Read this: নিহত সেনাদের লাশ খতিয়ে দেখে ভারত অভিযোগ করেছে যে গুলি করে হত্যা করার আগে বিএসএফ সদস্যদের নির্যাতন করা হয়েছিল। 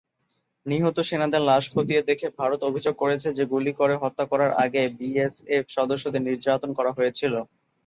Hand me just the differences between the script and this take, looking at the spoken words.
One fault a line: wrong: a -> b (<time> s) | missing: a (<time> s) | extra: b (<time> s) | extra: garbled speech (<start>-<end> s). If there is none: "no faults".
no faults